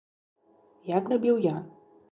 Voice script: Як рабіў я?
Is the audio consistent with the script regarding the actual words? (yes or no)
yes